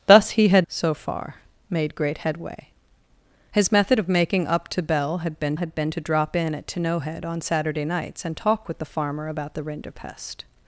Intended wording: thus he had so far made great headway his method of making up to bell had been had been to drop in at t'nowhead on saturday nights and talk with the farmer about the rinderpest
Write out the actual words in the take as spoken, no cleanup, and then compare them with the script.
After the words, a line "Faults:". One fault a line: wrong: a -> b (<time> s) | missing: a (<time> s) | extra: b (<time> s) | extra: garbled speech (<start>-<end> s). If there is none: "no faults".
thus he had so far made great headway his method of making up to bell had been had been to drop in at t'nowhead on saturday nights and talk with the farmer about the rinderpest
Faults:
no faults